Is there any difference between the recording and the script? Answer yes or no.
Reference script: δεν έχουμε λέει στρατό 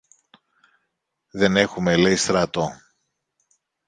no